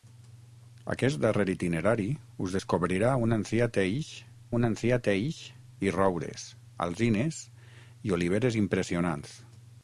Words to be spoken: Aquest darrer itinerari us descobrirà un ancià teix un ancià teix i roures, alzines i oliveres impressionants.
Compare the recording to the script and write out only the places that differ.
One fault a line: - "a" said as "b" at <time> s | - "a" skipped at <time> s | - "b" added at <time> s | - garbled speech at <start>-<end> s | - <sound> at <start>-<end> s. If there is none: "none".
none